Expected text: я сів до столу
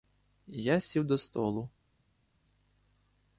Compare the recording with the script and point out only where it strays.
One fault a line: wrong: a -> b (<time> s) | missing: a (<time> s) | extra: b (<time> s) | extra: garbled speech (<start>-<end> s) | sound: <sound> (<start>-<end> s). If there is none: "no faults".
no faults